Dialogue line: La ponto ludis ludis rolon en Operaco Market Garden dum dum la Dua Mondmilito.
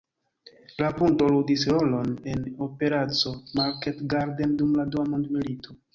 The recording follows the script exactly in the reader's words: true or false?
false